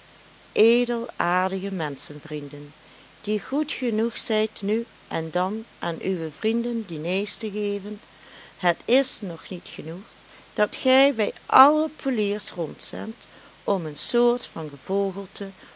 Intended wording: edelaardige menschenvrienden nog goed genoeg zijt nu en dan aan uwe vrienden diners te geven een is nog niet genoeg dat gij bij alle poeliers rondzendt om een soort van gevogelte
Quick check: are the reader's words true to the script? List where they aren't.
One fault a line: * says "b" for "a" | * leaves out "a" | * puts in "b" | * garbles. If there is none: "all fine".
* says "die" for "nog"
* says "het" for "een"